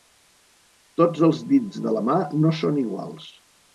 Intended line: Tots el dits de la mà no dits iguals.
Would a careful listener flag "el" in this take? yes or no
yes